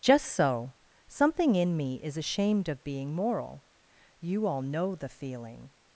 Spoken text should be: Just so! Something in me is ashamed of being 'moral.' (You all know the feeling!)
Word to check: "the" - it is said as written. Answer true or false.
true